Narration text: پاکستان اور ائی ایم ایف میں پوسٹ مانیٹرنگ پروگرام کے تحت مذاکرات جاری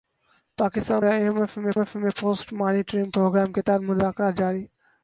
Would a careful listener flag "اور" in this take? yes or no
yes